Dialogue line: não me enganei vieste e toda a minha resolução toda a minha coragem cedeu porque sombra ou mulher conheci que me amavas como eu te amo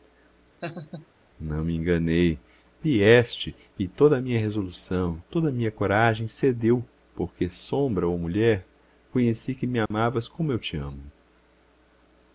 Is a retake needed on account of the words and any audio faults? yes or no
yes